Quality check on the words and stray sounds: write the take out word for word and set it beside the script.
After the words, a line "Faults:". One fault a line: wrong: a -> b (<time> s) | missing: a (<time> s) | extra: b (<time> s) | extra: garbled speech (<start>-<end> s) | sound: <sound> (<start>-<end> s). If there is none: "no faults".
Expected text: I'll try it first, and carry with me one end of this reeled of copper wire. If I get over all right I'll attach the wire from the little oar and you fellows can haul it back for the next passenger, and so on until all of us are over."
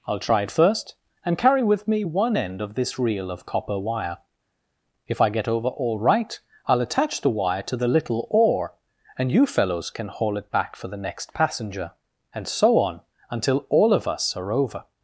I'll try it first, and carry with me one end of this reel of copper wire. If I get over all right I'll attach the wire to the little oar and you fellows can haul it back for the next passenger, and so on until all of us are over."
Faults:
wrong: reeled -> reel (3.0 s)
wrong: from -> to (7.6 s)